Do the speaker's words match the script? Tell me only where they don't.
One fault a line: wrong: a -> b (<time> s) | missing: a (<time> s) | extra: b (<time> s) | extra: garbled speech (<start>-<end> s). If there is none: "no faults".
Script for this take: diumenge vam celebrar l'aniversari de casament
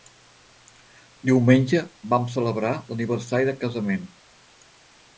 no faults